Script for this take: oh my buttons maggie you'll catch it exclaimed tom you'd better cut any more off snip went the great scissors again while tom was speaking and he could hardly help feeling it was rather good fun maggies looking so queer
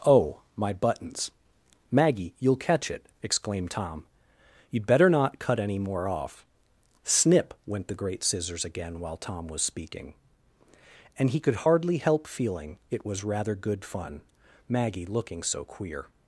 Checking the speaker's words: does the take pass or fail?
fail